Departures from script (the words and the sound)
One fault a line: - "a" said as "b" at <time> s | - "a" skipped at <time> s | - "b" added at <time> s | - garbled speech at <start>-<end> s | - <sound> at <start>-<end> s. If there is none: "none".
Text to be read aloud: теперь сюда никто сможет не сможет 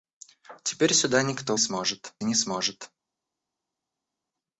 none